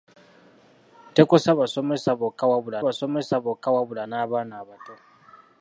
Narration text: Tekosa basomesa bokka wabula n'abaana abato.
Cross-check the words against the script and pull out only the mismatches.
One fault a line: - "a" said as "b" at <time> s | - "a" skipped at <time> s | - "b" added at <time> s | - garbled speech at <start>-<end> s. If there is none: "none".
- "basomesa bokka wabula" added at 2.8 s